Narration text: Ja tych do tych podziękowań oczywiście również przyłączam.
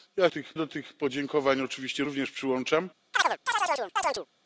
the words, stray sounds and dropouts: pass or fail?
fail